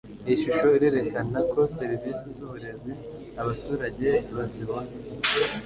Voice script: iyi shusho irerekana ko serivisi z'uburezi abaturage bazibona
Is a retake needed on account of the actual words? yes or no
no